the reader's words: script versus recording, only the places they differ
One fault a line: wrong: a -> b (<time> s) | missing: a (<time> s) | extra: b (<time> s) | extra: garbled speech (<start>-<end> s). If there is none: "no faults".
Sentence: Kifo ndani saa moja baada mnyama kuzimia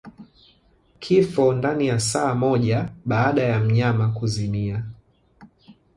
extra: ya (1.9 s)
extra: ya (3.4 s)